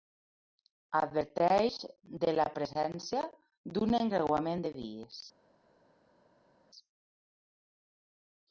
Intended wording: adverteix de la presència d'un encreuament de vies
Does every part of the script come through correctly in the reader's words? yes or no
yes